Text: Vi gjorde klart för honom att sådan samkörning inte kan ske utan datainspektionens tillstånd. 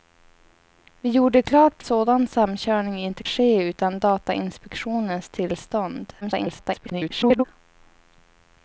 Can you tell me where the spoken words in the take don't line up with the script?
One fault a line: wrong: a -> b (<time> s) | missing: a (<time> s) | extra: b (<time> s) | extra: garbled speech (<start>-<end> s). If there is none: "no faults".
missing: för honom att (1.8 s)
missing: kan (3.2 s)
extra: garbled speech (6.2-7.4 s)